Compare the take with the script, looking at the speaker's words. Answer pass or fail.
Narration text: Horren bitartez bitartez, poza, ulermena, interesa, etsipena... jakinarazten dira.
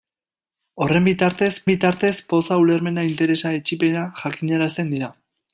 pass